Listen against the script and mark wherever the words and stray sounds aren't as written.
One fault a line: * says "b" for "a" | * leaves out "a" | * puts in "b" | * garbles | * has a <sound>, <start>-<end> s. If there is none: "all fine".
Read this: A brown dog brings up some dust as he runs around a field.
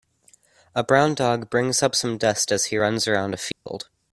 * has a dropout, 3.5-3.7 s